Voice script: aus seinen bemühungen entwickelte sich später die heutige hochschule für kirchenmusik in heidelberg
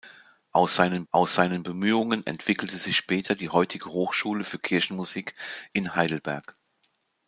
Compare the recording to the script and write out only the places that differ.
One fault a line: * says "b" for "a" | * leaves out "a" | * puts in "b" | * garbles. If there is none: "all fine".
* puts in "aus seinen"